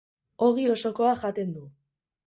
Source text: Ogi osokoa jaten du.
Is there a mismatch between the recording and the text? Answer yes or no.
no